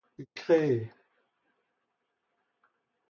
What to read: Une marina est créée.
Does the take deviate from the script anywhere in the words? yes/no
yes